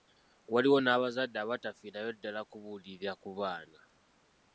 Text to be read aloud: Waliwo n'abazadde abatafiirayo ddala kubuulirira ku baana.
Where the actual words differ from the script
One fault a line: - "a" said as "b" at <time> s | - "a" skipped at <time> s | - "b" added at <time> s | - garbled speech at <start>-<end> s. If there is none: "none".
none